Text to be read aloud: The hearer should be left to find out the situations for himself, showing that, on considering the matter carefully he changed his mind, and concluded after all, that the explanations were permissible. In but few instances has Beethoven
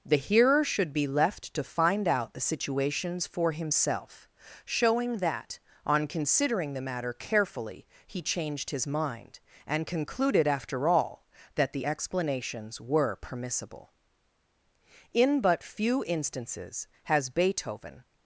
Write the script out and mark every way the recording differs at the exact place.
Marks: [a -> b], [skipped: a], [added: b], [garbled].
The hearer should be left to find out the situations for himself, showing that, on considering the matter carefully he changed his mind, and concluded after all, that the explanations were permissible. In but few instances has Beethoven